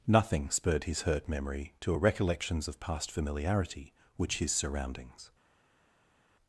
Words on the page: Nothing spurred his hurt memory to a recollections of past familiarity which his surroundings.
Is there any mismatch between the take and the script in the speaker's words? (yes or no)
no